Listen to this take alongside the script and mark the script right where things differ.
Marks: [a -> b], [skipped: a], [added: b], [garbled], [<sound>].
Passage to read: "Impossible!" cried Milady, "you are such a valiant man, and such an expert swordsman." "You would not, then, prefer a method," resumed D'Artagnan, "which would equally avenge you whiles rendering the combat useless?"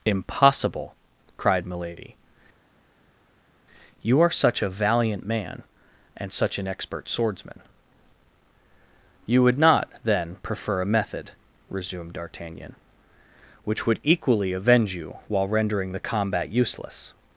"Impossible!" cried Milady, "you are such a valiant man, and such an expert swordsman." "You would not, then, prefer a method," resumed D'Artagnan, "which would equally avenge you [whiles -> while] rendering the combat useless?"